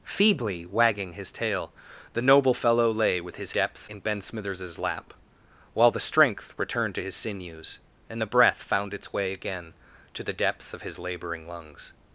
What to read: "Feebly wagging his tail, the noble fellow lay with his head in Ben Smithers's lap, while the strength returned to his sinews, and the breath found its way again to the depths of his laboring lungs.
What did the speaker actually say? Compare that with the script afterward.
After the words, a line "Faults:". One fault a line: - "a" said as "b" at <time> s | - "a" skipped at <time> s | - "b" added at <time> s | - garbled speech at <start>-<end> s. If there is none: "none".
"Feebly wagging his tail, the noble fellow lay with his depths in Ben Smithers's lap, while the strength returned to his sinews, and the breath found its way again to the depths of his laboring lungs.
Faults:
- "head" said as "depths" at 3.5 s